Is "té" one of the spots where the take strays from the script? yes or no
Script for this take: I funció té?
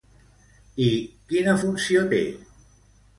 no